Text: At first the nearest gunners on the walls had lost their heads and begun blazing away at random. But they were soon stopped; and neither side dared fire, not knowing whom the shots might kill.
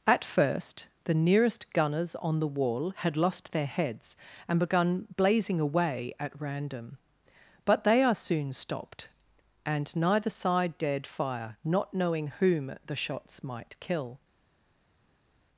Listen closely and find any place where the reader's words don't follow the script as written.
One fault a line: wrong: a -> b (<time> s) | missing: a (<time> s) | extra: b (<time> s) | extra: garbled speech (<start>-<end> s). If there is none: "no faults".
wrong: walls -> wall (2.5 s)
wrong: were -> are (8.0 s)